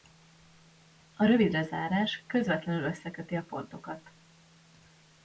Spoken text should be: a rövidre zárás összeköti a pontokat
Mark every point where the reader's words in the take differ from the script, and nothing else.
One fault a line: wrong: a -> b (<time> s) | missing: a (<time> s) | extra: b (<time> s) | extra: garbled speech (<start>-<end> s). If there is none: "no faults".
extra: közvetlenül (2.3 s)